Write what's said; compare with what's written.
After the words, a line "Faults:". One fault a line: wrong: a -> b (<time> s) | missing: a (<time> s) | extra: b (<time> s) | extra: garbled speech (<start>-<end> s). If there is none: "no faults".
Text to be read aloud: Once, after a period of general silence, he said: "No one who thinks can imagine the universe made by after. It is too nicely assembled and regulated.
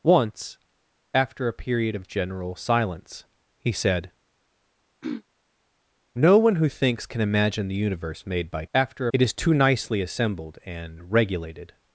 Once, after a period of general silence, he said: "No one who thinks can imagine the universe made by after. It is too nicely assembled and regulated.
Faults:
no faults